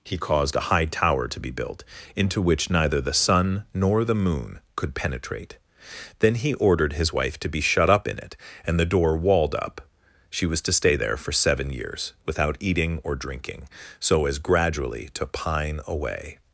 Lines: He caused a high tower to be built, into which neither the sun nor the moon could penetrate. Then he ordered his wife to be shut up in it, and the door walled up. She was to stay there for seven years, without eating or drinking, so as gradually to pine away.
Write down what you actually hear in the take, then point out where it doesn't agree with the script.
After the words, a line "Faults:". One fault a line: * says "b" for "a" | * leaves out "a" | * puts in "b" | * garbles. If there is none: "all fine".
He caused a high tower to be built, into which neither the sun nor the moon could penetrate. Then he ordered his wife to be shut up in it, and the door walled up. She was to stay there for seven years, without eating or drinking, so as gradually to pine away.
Faults:
all fine